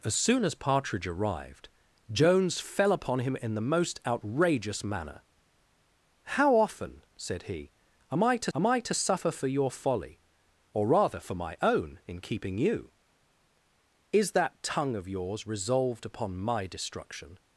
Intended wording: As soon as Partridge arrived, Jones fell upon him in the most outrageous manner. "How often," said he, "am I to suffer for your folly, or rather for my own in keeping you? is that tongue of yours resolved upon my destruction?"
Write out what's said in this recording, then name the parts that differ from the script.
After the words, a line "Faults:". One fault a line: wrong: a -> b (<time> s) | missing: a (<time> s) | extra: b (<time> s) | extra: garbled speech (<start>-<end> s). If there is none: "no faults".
As soon as Partridge arrived, Jones fell upon him in the most outrageous manner. "How often," said he, "am I to am I to suffer for your folly, or rather for my own in keeping you? is that tongue of yours resolved upon my destruction?"
Faults:
extra: am I to (8.5 s)